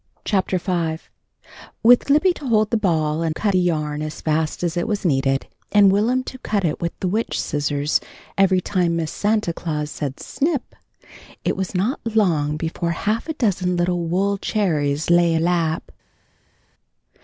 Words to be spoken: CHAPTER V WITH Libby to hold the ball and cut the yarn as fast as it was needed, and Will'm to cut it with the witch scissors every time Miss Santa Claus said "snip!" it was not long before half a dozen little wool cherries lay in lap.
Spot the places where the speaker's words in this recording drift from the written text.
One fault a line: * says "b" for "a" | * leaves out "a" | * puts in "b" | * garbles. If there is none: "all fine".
all fine